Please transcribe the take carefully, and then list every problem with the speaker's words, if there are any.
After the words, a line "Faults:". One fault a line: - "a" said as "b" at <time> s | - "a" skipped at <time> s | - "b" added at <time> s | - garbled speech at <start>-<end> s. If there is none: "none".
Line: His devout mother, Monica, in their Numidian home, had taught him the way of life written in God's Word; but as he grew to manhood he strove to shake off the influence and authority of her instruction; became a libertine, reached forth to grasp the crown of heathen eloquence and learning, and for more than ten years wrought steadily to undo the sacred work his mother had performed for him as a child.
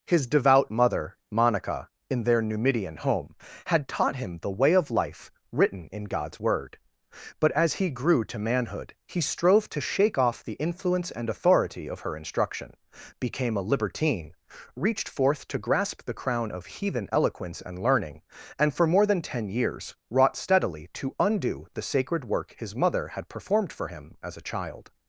His devout mother, Monica, in their Numidian home, had taught him the way of life written in God's Word; but as he grew to manhood he strove to shake off the influence and authority of her instruction; became a libertine, reached forth to grasp the crown of heathen eloquence and learning, and for more than ten years wrought steadily to undo the sacred work his mother had performed for him as a child.
Faults:
none